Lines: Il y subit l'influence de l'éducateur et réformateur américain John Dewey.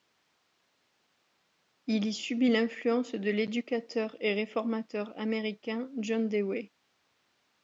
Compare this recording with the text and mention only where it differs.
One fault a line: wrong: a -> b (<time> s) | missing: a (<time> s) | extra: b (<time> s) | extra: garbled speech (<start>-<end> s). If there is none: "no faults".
no faults